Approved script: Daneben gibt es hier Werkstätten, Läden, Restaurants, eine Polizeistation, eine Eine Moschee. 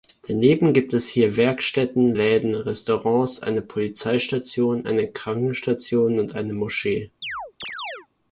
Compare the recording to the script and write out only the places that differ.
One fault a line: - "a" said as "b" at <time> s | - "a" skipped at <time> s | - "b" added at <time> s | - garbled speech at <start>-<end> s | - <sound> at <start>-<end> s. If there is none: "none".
- "Krankenstation und" added at 5.1 s
- chirp at 7.2-8.1 s